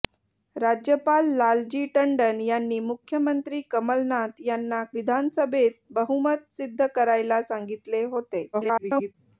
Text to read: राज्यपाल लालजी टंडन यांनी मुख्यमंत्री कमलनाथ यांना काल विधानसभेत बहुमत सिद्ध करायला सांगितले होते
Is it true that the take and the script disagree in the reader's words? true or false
true